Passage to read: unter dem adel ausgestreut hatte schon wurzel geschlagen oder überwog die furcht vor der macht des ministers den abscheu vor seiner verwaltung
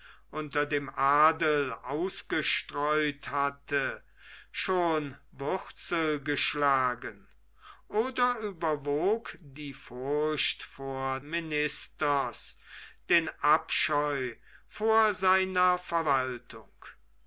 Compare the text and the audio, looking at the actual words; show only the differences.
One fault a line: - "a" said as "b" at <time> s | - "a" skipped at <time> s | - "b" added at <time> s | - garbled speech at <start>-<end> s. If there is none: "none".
- "der macht des" skipped at 11.2 s